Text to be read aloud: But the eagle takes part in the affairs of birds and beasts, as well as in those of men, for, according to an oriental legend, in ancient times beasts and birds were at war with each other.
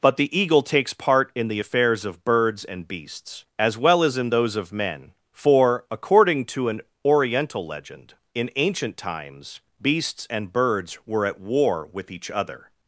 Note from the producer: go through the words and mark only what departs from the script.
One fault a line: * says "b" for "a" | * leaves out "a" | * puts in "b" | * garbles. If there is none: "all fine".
all fine